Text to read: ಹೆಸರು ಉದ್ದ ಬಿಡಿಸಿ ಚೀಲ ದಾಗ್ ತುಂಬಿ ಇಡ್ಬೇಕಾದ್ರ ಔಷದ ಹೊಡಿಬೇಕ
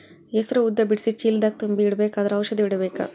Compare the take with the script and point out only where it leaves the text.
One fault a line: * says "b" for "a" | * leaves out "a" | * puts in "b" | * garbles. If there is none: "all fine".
all fine